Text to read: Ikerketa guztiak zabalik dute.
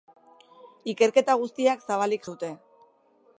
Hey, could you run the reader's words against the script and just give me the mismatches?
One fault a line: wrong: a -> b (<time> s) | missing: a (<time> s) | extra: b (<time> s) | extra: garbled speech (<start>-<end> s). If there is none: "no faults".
no faults